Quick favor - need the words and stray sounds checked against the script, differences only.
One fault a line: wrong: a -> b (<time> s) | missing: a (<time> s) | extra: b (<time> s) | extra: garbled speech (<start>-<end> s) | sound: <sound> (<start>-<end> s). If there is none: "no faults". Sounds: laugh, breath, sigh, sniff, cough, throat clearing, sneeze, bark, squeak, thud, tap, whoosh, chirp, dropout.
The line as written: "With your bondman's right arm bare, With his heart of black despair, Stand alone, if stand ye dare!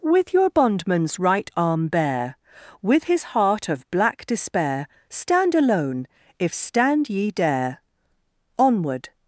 extra: Onward (8.6 s)